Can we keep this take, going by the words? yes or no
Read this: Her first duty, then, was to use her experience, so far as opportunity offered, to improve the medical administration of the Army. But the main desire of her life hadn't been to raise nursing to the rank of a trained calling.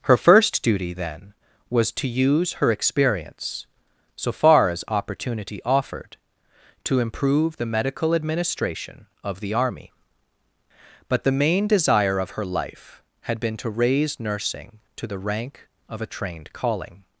no